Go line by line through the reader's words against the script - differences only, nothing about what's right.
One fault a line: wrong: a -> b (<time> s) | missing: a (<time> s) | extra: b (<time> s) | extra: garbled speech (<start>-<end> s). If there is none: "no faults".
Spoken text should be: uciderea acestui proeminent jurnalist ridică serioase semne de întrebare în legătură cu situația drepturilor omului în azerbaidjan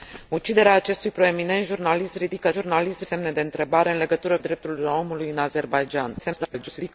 wrong: serioase -> jurnalist (2.5 s)
missing: cu situația (4.4 s)
extra: garbled speech (6.2-6.9 s)